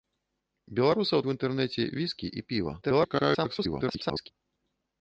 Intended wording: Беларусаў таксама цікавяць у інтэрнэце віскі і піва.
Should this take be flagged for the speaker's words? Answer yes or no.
yes